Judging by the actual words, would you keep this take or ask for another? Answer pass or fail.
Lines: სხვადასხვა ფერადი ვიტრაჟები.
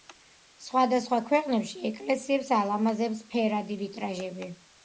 fail